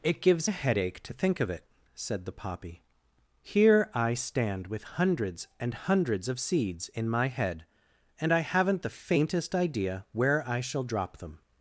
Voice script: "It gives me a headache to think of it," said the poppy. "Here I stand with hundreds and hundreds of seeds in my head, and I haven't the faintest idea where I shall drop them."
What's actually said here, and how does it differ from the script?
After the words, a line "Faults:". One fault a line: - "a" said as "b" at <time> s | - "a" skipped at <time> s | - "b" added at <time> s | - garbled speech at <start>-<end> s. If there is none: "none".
"It gives a headache to think of it," said the poppy. "Here I stand with hundreds and hundreds of seeds in my head, and I haven't the faintest idea where I shall drop them."
Faults:
- "me" skipped at 0.5 s